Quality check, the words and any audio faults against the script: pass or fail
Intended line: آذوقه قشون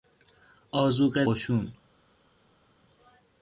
pass